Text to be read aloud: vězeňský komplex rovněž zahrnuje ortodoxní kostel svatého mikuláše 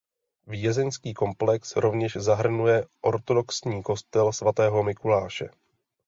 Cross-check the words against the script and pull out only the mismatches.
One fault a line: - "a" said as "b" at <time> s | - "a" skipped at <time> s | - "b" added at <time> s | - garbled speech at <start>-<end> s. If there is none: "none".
none